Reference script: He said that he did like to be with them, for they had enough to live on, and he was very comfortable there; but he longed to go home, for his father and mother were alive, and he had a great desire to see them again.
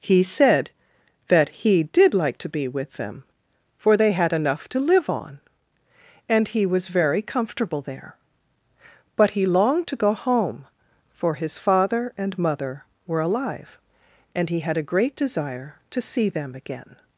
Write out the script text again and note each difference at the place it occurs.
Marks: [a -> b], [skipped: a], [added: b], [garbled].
He said that he did like to be with them, for they had enough to live on, and he was very comfortable there; but he longed to go home, for his father and mother were alive, and he had a great desire to see them again.